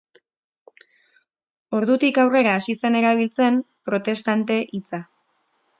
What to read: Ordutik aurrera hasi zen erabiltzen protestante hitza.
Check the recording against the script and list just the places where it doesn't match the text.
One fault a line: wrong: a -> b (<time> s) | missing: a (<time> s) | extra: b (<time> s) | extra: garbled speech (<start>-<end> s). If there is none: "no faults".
no faults